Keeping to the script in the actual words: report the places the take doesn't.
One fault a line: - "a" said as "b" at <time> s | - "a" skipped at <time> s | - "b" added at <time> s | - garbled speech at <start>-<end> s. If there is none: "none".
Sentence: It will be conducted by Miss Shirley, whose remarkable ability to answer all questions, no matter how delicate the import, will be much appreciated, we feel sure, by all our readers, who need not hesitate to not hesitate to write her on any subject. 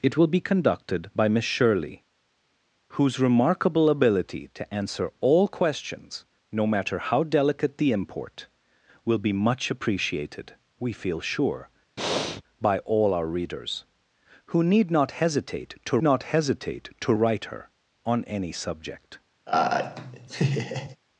none